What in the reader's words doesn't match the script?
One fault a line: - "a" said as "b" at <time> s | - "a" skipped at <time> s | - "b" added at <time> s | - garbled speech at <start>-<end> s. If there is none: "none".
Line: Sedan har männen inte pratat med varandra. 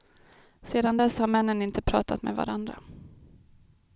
- "dess" added at 0.9 s